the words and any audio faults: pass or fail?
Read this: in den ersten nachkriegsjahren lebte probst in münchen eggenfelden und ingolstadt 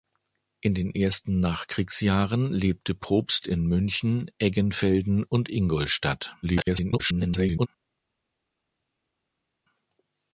fail